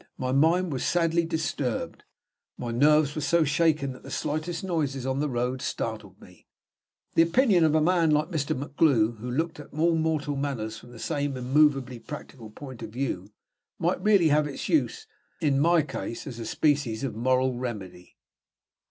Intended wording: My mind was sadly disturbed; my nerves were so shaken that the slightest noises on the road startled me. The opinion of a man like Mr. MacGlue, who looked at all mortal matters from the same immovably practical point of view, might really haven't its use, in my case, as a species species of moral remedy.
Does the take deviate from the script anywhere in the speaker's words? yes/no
yes